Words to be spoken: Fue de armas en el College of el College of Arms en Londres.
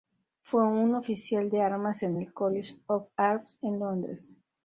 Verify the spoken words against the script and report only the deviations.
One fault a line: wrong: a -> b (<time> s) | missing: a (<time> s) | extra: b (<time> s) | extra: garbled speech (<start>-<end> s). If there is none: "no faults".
extra: un oficial (0.6 s)
missing: el College of (3.1 s)